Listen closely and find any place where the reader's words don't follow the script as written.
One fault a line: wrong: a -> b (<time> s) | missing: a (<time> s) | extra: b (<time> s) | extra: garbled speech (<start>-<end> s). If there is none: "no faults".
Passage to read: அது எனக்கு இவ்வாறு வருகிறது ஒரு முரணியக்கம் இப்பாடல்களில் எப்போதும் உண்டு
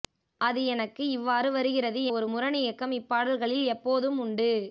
no faults